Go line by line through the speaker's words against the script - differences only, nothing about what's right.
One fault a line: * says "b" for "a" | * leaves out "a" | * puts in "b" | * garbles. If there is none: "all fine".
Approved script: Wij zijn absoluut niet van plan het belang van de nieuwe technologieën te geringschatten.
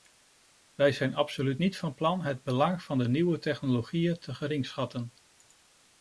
all fine